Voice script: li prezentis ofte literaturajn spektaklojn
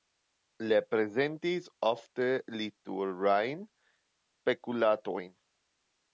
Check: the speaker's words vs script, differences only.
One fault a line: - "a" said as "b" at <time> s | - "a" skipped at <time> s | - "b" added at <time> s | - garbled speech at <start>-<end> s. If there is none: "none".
none